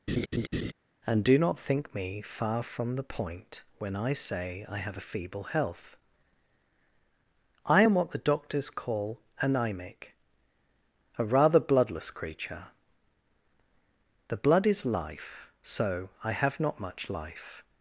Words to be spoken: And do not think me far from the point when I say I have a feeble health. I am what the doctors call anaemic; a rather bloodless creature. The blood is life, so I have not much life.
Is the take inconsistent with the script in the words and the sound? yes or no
yes